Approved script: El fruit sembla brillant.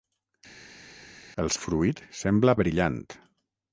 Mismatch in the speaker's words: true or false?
false